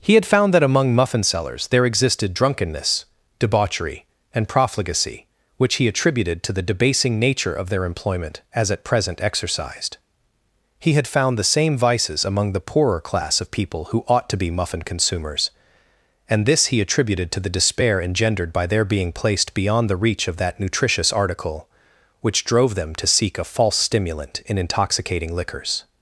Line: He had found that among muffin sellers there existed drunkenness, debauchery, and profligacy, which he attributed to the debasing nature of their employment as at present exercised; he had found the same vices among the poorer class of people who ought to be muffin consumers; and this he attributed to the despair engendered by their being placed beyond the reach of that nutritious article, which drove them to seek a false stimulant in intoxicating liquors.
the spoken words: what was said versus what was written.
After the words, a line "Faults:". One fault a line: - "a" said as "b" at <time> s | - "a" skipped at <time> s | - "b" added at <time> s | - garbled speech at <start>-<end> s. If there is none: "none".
He had found that among muffin sellers there existed drunkenness, debauchery, and profligacy, which he attributed to the debasing nature of their employment as at present exercised; he had found the same vices among the poorer class of people who ought to be muffin consumers; and this he attributed to the despair engendered by their being placed beyond the reach of that nutritious article, which drove them to seek a false stimulant in intoxicating liquors.
Faults:
none